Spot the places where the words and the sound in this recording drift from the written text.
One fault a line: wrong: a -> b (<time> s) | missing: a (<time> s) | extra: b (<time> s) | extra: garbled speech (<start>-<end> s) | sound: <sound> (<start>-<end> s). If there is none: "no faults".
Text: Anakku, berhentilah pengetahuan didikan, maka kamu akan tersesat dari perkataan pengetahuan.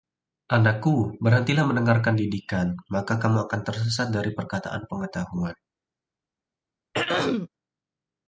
wrong: pengetahuan -> mendengarkan (1.7 s)
sound: throat clearing (6.9-7.5 s)